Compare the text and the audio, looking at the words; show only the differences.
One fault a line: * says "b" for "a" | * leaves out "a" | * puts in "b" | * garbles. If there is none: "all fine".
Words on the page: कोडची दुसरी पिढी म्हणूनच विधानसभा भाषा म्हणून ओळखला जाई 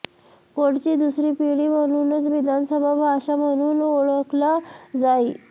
all fine